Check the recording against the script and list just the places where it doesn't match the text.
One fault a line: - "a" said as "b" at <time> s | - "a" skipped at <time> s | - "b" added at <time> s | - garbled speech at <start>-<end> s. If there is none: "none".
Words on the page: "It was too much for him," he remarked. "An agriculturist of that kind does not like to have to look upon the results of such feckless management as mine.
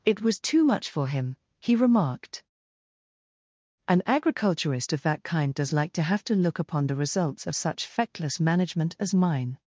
- "not" skipped at 5.7 s